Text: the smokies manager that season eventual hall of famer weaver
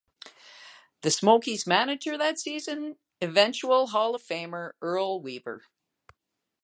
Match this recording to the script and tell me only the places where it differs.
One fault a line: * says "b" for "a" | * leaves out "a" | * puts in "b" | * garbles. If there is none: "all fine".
* puts in "earl"